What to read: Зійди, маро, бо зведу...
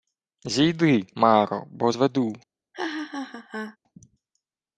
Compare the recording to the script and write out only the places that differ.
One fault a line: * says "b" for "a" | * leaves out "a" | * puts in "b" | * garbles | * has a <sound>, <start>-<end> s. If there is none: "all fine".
* has a laugh, 2.7-3.8 s